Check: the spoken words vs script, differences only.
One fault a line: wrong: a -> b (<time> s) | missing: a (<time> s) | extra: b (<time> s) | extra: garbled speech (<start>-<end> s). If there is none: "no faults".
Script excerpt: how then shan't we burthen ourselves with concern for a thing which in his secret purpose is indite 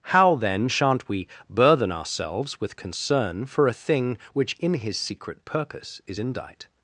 no faults